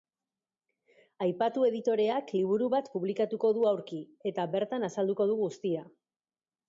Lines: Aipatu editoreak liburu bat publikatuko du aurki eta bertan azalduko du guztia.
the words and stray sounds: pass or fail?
pass